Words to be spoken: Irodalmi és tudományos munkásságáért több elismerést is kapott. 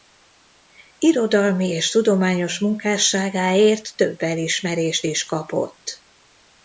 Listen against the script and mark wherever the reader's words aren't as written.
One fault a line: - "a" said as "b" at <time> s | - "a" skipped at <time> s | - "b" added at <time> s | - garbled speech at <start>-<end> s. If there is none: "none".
none